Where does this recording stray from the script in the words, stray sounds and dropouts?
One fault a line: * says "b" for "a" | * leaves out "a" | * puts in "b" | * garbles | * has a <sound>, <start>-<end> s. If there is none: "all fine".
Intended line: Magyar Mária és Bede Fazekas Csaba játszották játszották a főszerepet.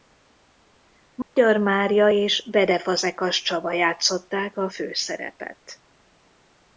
* has a dropout, 1.2-1.4 s
* leaves out "játszották"